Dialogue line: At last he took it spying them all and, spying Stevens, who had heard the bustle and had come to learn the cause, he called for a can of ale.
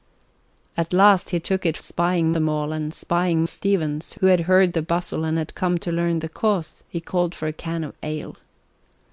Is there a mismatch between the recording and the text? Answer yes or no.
no